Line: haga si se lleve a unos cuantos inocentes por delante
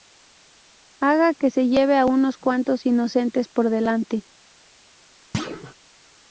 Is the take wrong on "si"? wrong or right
wrong